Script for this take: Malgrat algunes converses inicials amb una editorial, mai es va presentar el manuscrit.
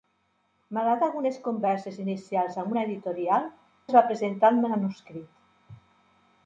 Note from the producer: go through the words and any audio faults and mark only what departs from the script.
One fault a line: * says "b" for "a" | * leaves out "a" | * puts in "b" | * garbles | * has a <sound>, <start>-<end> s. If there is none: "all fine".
* leaves out "mai"